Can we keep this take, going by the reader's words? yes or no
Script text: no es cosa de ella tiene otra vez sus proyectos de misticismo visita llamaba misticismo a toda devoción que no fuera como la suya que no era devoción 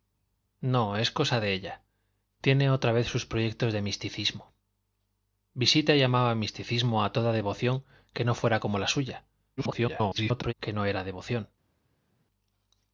no